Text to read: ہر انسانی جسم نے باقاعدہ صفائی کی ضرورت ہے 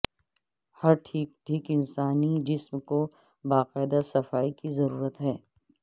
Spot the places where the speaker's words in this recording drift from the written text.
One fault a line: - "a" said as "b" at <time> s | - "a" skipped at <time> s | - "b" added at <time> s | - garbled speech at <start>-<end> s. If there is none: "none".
- "ٹھیک ٹھیک" added at 1.1 s
- "نے" said as "کو" at 2.9 s